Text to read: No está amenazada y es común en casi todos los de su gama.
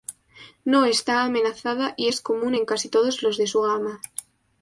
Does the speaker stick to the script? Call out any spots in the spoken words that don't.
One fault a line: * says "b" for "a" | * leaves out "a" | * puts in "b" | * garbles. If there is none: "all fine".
all fine